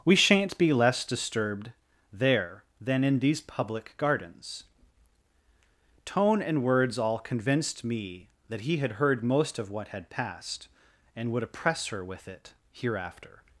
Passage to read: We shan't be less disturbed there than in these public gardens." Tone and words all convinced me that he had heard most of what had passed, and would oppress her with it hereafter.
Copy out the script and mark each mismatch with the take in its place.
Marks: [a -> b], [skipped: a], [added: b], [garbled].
We shan't be less disturbed there than in these public gardens." Tone and words all convinced me that he had heard most of what had passed, and would oppress her with it hereafter.